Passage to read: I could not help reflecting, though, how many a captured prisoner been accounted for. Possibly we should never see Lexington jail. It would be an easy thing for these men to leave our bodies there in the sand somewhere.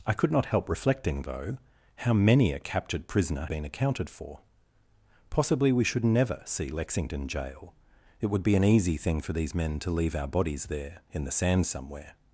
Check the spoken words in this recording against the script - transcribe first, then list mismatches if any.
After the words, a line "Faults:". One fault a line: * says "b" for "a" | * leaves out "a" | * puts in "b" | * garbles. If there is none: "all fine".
I could not help reflecting, though, how many a captured prisoner been accounted for. Possibly we should never see Lexington jail. It would be an easy thing for these men to leave our bodies there in the sand somewhere.
Faults:
all fine